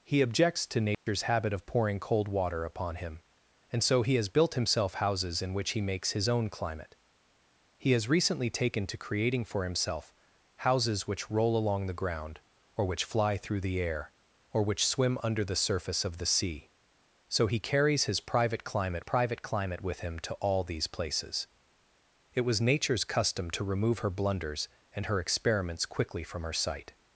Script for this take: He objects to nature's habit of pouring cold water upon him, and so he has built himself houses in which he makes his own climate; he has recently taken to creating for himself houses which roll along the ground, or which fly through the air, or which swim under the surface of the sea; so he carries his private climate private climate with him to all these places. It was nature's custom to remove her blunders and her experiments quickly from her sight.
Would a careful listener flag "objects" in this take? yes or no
no